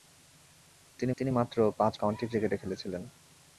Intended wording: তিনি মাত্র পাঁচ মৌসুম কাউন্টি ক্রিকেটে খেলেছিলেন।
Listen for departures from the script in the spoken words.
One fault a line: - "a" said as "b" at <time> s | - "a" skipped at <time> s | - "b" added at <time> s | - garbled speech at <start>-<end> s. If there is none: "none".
- "তিনি" added at 1.2 s
- "মৌসুম" skipped at 1.9 s